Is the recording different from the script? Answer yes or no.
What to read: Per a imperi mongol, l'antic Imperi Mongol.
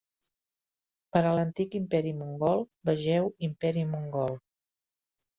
yes